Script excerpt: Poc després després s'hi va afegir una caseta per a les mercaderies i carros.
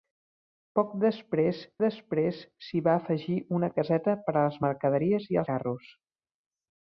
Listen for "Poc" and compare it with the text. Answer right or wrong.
right